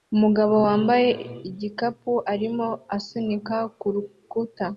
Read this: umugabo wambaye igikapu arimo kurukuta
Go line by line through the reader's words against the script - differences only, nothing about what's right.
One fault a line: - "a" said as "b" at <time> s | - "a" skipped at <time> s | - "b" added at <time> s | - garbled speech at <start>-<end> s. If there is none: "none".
- "asunika" added at 3.0 s